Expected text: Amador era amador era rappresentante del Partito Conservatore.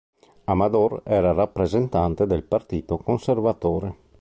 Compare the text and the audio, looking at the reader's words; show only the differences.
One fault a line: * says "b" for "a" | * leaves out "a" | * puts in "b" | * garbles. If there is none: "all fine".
* leaves out "amador era"